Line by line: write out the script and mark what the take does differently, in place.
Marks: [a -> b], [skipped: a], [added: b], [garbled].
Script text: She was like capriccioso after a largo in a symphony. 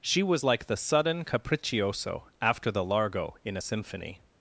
She was like [added: the sudden] capriccioso after [a -> the] largo in a symphony.